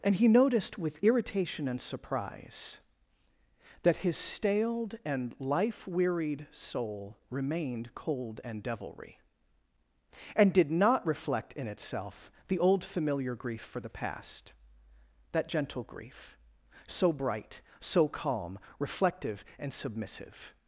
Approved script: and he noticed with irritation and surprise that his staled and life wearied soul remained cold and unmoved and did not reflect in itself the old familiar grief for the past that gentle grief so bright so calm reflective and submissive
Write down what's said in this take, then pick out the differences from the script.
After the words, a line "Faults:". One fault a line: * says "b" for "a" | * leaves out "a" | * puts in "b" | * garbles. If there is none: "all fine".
and he noticed with irritation and surprise that his staled and life wearied soul remained cold and devilry and did not reflect in itself the old familiar grief for the past that gentle grief so bright so calm reflective and submissive
Faults:
* says "devilry" for "unmoved"